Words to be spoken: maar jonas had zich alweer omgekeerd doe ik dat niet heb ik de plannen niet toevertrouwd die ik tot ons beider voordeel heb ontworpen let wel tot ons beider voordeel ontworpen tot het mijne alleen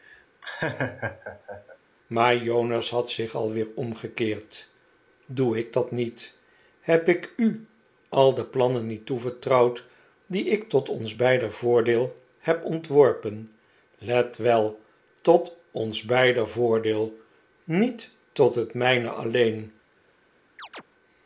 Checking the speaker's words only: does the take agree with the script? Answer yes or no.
no